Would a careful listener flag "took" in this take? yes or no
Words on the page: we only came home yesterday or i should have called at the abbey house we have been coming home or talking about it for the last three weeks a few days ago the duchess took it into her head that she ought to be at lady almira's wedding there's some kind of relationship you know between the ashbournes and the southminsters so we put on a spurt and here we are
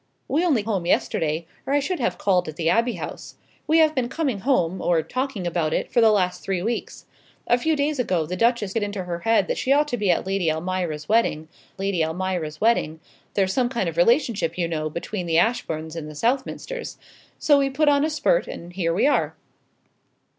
yes